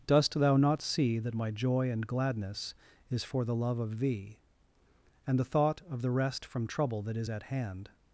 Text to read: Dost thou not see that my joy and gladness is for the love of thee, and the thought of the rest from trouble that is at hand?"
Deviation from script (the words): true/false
false